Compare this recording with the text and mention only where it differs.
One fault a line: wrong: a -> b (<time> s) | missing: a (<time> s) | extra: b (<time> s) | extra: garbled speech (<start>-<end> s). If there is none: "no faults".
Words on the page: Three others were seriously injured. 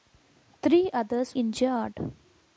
missing: were seriously (1.4 s)